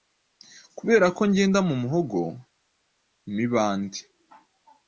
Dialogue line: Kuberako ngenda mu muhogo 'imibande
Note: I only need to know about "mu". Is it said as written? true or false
true